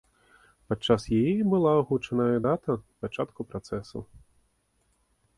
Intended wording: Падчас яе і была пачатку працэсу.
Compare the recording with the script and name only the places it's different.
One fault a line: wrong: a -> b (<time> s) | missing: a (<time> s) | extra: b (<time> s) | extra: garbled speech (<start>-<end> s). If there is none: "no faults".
extra: агучаная дата (1.8 s)